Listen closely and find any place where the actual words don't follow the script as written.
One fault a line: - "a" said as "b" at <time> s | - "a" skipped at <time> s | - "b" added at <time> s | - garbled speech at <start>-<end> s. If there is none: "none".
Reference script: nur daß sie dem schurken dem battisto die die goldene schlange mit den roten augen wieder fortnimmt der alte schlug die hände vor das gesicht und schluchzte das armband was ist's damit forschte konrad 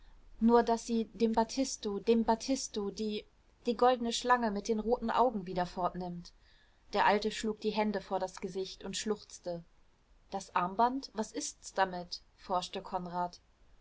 - "schurken" said as "battisto" at 1.3 s